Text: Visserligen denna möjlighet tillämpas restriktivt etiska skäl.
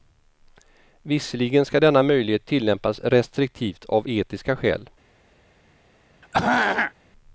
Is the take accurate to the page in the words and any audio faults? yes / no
no